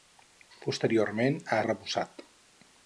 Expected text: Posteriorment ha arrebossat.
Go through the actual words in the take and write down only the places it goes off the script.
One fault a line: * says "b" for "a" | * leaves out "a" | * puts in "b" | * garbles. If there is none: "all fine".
all fine